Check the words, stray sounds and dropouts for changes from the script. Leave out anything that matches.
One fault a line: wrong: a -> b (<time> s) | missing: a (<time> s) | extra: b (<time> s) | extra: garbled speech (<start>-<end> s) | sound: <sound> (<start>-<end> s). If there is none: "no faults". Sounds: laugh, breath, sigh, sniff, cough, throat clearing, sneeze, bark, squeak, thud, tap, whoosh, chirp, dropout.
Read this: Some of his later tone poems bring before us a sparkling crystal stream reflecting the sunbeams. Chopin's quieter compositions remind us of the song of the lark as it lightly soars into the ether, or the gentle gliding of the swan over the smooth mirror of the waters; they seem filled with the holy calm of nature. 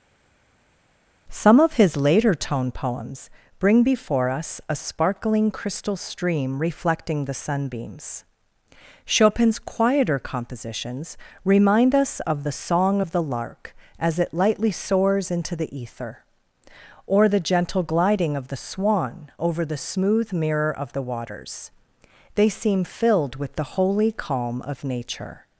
no faults